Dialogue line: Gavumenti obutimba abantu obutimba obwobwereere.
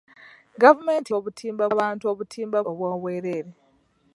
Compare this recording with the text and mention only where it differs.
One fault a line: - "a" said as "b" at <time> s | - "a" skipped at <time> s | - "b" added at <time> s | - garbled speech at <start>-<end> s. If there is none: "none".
none